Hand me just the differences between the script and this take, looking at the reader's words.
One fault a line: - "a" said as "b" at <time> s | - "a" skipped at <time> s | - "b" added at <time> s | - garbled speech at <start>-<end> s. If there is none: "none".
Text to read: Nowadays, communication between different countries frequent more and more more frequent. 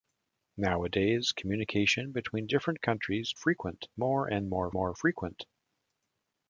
none